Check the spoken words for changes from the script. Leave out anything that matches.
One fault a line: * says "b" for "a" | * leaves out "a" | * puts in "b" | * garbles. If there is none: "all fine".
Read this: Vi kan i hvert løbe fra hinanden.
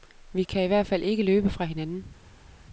* puts in "fald ikke"